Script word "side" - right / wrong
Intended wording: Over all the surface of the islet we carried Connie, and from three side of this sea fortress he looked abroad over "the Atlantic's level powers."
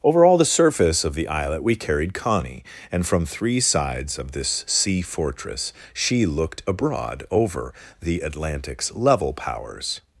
wrong